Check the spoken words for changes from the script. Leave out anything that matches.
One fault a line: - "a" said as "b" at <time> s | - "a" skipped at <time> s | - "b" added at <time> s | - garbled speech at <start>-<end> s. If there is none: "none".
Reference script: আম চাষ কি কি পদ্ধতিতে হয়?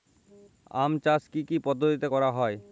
- "করা" added at 2.1 s